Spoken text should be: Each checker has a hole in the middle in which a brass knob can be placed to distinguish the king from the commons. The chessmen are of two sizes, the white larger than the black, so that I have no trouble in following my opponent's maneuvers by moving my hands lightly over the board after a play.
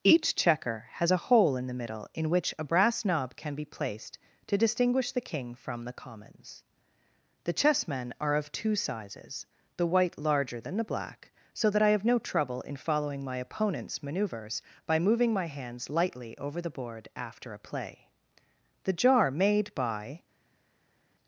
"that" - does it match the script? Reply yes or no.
yes